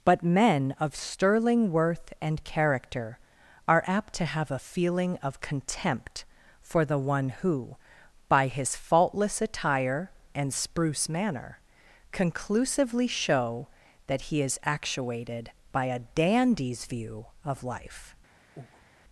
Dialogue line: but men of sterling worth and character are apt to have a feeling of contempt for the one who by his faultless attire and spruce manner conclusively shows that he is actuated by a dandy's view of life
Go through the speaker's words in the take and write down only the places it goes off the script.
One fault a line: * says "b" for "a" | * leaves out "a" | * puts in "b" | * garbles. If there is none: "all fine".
* says "show" for "shows"